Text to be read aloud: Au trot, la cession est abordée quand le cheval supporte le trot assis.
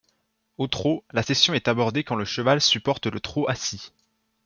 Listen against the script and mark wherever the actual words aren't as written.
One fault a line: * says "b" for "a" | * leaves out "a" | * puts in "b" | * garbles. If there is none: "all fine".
all fine